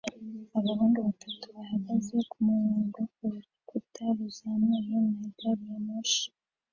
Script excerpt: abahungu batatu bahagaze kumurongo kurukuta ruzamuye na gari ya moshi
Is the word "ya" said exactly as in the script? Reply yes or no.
yes